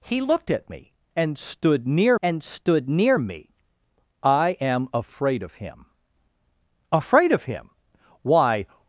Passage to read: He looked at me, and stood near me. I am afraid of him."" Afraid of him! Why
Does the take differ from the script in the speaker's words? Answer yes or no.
yes